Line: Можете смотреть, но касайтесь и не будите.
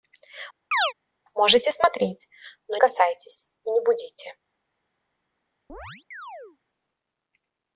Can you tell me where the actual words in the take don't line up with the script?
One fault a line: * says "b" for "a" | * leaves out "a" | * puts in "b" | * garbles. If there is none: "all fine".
all fine